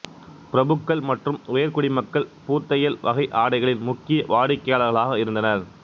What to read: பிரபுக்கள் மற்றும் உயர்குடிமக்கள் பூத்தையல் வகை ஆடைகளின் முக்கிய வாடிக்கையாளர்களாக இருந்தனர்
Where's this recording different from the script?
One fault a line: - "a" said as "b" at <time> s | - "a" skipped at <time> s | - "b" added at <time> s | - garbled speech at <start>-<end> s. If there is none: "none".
none